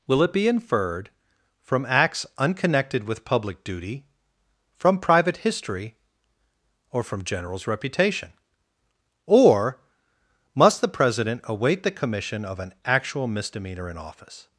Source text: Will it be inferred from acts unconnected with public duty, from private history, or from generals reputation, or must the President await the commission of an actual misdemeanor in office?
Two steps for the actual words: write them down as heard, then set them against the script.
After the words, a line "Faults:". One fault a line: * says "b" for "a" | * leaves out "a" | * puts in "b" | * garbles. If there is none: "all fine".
Will it be inferred from acts unconnected with public duty, from private history, or from generals reputation, or must the President await the commission of an actual misdemeanor in office?
Faults:
all fine